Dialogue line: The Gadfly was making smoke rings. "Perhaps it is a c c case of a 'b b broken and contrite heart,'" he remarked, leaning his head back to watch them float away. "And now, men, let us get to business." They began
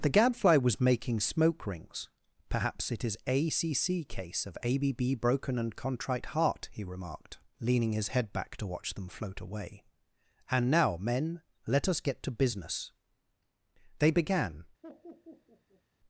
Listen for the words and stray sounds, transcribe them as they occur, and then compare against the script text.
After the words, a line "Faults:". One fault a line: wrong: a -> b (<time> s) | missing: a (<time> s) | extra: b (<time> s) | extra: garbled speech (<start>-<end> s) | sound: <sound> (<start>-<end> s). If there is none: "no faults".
The Gadfly was making smoke rings. "Perhaps it is a c c case of a 'b b broken and contrite heart,'" he remarked, leaning his head back to watch them float away. "And now, men, let us get to business." They began
Faults:
sound: laugh (14.8-15.8 s)